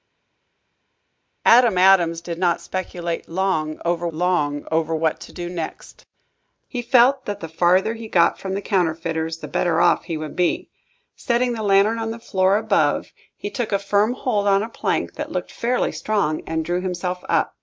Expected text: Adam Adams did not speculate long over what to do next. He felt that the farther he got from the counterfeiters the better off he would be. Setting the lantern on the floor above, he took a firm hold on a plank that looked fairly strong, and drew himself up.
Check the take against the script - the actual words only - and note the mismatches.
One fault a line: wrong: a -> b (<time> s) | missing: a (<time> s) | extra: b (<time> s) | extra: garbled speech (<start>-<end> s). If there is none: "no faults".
extra: long over (4.1 s)